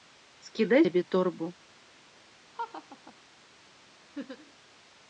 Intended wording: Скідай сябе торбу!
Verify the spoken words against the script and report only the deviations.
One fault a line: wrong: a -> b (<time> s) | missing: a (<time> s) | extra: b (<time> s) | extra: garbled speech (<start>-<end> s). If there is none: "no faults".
no faults